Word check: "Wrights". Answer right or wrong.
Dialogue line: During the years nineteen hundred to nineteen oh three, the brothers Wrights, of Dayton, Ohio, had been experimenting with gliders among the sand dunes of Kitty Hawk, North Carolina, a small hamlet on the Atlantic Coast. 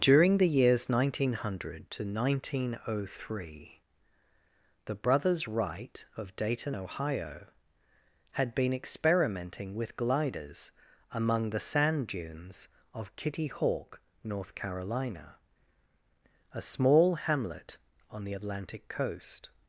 wrong